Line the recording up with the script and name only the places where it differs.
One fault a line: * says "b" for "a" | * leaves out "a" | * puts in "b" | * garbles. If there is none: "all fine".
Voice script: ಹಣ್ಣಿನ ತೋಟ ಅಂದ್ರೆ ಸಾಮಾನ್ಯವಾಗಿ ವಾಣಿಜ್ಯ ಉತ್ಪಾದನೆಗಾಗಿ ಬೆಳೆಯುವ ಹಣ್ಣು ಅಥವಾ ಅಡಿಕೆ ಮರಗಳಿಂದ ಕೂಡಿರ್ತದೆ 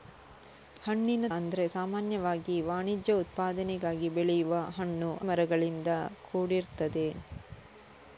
* leaves out "ತೋಟ"
* leaves out "ಅಥವಾ ಅಡಿಕೆ"